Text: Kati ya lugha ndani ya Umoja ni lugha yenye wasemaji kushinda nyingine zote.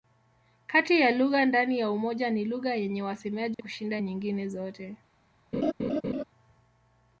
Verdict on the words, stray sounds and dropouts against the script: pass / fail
fail